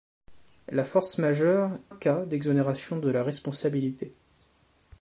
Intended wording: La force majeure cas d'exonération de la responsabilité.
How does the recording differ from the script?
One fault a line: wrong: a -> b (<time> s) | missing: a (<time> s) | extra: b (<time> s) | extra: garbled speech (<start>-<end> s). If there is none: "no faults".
no faults